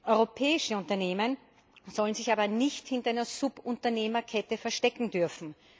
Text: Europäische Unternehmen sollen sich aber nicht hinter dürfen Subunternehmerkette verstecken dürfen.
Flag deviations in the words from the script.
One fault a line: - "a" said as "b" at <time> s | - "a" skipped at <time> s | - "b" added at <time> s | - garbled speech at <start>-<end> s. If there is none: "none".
- "dürfen" said as "einer" at 3.1 s